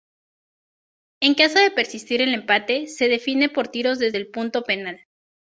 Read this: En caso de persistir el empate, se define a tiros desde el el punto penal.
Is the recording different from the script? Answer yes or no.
yes